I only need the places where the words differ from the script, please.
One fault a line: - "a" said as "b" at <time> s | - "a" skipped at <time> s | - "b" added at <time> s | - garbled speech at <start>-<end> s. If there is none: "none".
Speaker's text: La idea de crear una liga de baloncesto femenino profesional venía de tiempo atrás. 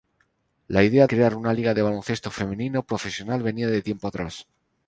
- "de" skipped at 1.1 s